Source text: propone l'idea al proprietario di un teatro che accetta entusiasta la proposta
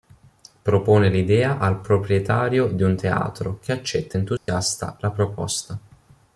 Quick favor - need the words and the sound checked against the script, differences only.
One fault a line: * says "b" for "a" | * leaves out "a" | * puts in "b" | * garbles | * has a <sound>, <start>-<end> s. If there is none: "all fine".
* has a dropout, 4.4-4.5 s